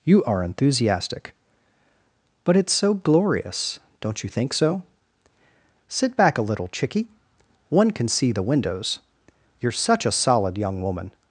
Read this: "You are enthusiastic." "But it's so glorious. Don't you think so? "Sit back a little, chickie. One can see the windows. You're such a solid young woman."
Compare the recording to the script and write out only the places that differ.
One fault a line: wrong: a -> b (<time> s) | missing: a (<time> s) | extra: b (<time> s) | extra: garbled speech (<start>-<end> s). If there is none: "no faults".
no faults